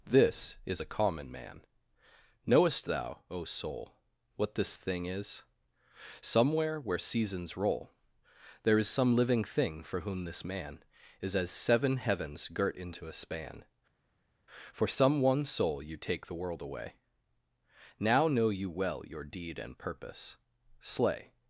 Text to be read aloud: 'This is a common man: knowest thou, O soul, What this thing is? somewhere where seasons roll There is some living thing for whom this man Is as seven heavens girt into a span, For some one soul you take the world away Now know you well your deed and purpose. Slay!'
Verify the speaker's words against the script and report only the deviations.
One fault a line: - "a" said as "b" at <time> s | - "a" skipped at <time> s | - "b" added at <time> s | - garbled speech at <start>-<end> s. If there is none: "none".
none